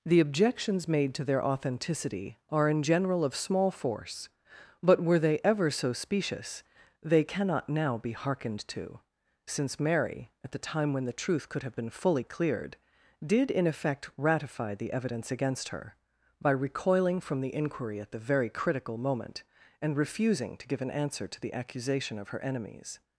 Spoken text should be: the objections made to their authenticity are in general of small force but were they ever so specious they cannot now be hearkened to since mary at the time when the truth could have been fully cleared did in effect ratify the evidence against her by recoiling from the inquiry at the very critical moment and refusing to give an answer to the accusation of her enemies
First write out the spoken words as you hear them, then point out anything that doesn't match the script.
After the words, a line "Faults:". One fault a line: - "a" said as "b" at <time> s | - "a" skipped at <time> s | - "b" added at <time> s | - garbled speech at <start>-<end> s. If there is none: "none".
the objections made to their authenticity are in general of small force but were they ever so specious they cannot now be hearkened to since mary at the time when the truth could have been fully cleared did in effect ratify the evidence against her by recoiling from the inquiry at the very critical moment and refusing to give an answer to the accusation of her enemies
Faults:
none